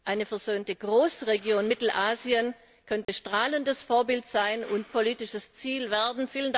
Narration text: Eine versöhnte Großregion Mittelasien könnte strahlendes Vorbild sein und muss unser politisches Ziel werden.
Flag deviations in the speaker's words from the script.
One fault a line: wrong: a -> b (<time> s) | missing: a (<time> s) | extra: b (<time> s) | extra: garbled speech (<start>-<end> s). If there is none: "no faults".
missing: muss unser (4.9 s)